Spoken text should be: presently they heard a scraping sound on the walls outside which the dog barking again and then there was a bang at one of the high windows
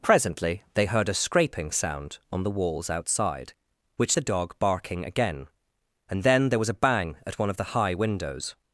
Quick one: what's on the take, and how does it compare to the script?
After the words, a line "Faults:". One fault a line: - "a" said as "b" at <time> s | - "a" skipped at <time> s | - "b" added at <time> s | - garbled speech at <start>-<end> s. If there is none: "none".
presently they heard a scraping sound on the walls outside which the dog barking again and then there was a bang at one of the high windows
Faults:
none